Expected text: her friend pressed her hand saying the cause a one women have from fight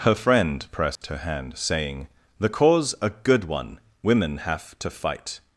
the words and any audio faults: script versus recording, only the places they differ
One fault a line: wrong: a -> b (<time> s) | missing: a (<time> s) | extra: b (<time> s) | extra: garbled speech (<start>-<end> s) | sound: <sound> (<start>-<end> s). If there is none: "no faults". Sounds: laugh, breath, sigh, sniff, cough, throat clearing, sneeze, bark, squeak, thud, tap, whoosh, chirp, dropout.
sound: dropout (1.0-1.0 s)
extra: good (3.1 s)
wrong: from -> to (4.8 s)